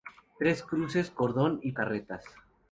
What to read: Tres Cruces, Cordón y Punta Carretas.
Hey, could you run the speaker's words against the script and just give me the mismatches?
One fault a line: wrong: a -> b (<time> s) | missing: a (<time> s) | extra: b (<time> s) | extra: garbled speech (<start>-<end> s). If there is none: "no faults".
missing: Punta (1.7 s)